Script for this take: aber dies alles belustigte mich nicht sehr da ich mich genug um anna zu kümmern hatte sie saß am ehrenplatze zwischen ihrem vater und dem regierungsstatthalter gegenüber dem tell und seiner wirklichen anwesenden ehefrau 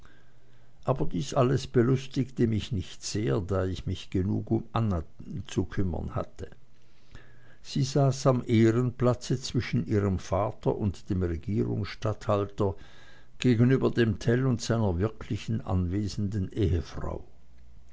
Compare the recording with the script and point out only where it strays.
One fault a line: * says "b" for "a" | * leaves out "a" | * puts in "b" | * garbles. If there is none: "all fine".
all fine